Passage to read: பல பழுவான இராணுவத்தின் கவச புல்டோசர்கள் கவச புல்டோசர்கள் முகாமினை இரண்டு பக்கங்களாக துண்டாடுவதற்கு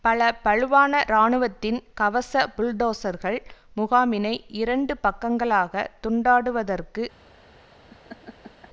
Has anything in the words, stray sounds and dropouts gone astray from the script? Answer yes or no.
yes